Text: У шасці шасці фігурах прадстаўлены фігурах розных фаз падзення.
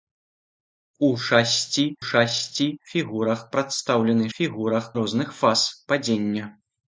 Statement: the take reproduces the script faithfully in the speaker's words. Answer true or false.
true